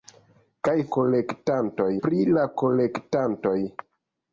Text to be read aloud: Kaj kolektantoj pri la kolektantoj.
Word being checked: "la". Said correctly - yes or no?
yes